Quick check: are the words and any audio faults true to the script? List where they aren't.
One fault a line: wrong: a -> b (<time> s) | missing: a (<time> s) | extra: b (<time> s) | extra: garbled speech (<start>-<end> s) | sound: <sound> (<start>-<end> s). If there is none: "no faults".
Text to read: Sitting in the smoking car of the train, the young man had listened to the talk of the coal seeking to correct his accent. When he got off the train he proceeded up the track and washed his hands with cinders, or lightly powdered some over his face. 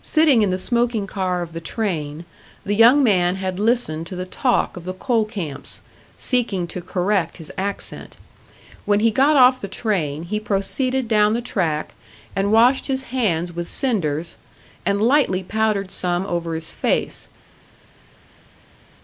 extra: camps (5.2 s)
wrong: up -> down (11.1 s)
wrong: or -> and (14.8 s)